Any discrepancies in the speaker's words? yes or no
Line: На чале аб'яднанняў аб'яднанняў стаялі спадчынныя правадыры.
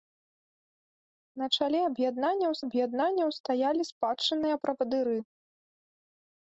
no